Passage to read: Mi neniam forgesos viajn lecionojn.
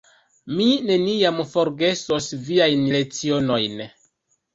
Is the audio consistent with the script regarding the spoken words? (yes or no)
yes